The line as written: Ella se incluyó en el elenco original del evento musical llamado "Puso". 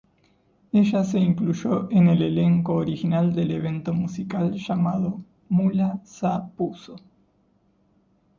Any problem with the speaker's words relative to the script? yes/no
yes